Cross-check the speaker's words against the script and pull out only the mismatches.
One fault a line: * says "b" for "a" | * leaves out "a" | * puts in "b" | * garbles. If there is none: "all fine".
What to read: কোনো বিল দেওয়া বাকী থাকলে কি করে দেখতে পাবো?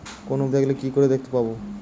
* leaves out "বিল দেওয়া বাকী"